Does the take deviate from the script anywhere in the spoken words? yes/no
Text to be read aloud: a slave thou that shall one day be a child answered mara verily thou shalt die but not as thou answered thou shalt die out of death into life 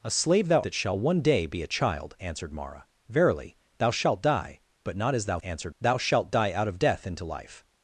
no